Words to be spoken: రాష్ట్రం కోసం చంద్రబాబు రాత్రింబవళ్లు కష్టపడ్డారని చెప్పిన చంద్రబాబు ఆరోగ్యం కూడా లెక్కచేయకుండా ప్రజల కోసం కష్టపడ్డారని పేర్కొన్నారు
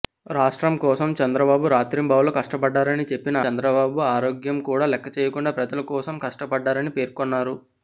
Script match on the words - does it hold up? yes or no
yes